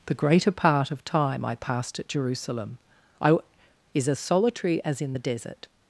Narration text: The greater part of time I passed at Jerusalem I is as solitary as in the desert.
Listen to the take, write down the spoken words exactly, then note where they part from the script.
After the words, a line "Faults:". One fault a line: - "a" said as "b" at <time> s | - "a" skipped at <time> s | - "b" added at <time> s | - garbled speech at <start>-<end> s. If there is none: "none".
The greater part of time I passed at Jerusalem I is as solitary as in the desert.
Faults:
none